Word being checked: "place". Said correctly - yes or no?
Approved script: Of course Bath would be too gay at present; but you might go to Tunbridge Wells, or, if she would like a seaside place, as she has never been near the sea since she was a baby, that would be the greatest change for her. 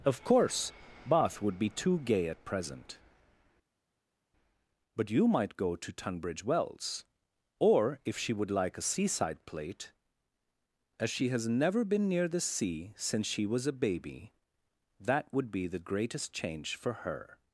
no